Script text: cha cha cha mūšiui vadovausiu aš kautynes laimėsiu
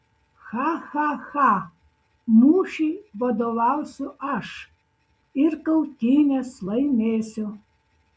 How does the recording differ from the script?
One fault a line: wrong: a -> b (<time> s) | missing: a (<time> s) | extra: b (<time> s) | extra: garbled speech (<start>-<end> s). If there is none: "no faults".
extra: ir (5.5 s)